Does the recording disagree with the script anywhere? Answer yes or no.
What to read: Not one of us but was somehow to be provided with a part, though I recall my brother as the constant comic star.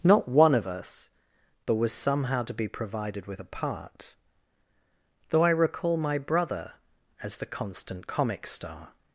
no